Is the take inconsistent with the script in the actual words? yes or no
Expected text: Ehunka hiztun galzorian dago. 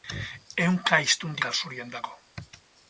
no